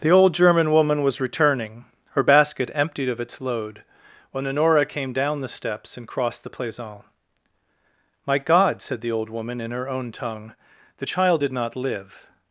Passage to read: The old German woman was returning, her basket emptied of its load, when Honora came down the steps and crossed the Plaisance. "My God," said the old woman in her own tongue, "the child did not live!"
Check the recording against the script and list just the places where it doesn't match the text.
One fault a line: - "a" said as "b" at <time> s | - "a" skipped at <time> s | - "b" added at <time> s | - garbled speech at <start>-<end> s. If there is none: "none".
none